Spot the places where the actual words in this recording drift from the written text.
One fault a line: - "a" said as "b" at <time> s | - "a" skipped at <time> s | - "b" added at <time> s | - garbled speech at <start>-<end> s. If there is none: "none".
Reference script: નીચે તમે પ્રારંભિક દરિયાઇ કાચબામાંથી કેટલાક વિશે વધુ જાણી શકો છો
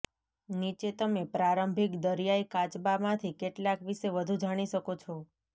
none